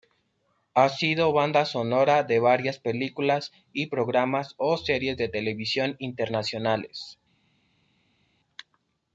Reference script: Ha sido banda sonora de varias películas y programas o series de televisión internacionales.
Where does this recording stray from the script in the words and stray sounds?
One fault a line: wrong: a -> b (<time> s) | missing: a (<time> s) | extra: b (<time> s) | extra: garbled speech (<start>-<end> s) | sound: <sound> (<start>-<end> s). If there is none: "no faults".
no faults